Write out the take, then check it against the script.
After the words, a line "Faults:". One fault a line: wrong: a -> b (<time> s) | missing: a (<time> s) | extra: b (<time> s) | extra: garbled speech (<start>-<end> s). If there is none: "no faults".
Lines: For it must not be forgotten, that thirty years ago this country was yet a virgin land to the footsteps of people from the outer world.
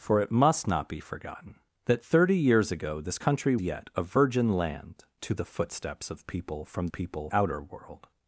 For it must not be forgotten, that thirty years ago this country yet a virgin land to the footsteps of people from people outer world.
Faults:
missing: was (3.6 s)
wrong: the -> people (6.9 s)